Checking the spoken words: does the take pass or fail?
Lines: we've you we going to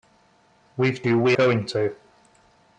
pass